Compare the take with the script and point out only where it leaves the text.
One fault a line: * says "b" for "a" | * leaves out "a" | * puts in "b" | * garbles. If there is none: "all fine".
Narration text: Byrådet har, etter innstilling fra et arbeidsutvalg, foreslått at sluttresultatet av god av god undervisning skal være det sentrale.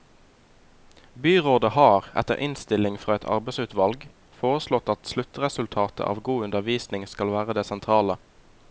* leaves out "av god"